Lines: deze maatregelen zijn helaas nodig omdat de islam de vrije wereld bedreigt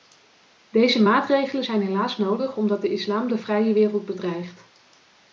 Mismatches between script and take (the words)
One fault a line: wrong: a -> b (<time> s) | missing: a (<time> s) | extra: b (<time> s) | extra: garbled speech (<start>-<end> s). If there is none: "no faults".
no faults